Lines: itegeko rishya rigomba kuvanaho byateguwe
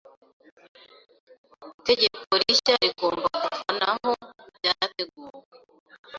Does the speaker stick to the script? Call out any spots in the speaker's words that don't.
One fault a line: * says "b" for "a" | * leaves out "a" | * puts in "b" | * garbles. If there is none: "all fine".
all fine